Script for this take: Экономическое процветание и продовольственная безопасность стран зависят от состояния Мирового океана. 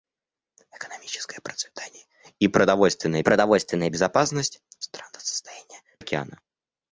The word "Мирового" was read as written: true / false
false